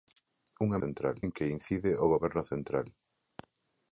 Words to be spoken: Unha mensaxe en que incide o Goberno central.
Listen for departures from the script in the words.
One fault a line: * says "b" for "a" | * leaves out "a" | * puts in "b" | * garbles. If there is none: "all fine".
* says "central" for "mensaxe"